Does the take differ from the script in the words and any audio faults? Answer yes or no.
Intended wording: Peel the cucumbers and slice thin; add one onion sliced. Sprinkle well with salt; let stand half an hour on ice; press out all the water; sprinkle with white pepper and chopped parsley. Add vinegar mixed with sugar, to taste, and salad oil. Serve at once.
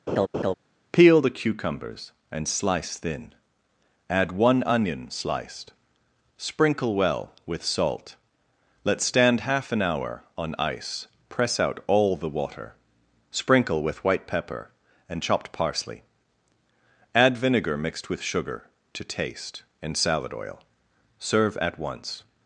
yes